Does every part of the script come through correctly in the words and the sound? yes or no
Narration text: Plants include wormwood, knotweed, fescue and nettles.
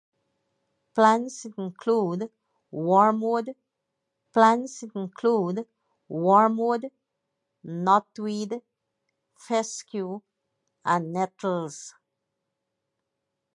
no